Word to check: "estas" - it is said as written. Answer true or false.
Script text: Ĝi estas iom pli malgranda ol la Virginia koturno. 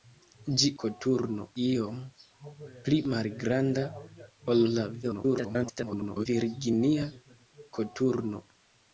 false